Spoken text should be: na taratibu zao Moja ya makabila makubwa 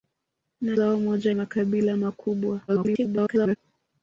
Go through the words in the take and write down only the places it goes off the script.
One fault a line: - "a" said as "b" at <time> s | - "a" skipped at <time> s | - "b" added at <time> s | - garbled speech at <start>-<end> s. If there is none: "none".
- "taratibu" skipped at 0.8 s
- "ya" skipped at 1.3 s
- garbled speech at 2.7-3.6 s